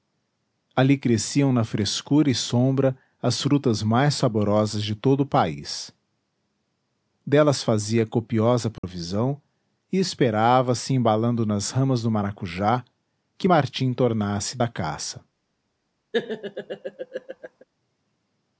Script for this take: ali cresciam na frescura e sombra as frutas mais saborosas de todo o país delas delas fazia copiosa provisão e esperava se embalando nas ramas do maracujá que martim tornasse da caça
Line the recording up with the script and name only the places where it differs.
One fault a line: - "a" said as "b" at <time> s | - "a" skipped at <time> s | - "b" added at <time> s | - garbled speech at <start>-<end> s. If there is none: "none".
- "delas" skipped at 7.6 s